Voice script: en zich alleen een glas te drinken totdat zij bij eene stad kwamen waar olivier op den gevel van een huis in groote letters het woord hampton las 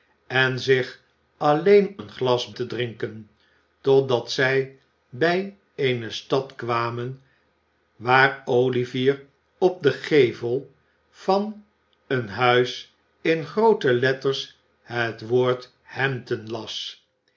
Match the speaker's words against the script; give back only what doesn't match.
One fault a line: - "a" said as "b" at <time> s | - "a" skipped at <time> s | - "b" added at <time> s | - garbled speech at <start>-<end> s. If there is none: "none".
none